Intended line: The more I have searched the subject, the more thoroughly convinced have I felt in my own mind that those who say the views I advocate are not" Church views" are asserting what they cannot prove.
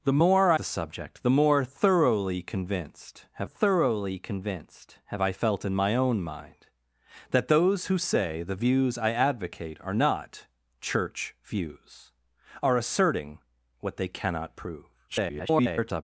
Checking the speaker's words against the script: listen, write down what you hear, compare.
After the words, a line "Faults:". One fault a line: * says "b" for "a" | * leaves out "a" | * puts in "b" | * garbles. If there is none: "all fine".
The more I the subject, the more thoroughly convinced have thoroughly convinced have I felt in my own mind that those who say the views I advocate are not" Church views" are asserting what they cannot prove. [garbled]
Faults:
* leaves out "have searched"
* puts in "thoroughly convinced have"
* garbles